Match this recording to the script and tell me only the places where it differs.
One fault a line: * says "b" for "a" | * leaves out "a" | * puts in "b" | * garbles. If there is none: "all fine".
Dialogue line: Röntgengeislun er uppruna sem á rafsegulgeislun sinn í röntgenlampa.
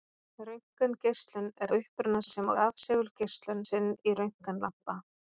all fine